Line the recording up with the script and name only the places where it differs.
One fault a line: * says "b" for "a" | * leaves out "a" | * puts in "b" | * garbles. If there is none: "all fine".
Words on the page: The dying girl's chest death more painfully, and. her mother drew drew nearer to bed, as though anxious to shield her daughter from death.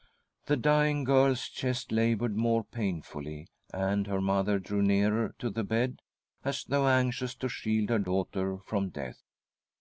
* says "laboured" for "death"
* leaves out "drew"
* puts in "the"